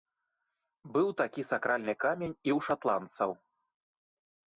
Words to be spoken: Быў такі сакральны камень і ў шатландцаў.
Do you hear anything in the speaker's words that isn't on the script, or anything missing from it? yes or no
no